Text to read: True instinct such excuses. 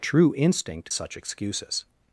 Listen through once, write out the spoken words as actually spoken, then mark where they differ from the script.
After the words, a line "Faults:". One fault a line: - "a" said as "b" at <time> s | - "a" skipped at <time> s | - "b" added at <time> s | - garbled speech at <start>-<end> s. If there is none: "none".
True instinct such excuses.
Faults:
none